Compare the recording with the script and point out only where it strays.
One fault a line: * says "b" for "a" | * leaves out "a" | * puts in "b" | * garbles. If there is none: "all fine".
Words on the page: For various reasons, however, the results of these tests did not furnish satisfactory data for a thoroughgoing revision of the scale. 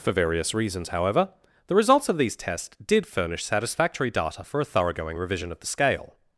* leaves out "not"